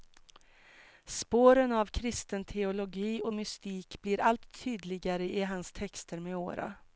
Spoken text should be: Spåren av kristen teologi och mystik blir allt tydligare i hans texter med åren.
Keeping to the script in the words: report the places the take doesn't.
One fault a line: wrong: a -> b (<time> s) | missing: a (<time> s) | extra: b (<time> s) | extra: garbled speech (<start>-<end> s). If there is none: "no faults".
no faults